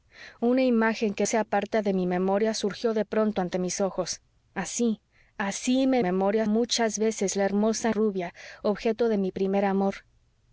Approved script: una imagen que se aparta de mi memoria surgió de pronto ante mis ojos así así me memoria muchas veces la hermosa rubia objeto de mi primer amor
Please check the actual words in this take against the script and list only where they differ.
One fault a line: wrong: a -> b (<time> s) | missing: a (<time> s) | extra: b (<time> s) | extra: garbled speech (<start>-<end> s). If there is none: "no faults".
no faults